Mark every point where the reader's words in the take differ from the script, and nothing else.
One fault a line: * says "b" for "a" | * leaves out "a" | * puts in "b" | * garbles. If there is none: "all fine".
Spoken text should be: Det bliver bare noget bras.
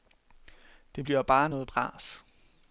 all fine